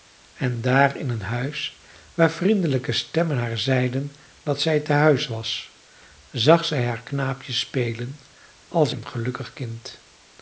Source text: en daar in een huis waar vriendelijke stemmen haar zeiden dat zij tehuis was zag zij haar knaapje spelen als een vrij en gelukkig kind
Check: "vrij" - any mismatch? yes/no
yes